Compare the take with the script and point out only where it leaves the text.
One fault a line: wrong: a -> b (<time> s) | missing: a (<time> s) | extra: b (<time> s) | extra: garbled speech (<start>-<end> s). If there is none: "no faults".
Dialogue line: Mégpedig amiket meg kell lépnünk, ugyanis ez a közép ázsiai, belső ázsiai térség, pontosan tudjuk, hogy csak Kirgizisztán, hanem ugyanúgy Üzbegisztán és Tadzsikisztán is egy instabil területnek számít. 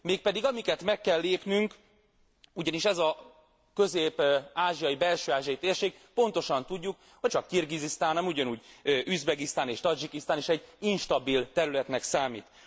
no faults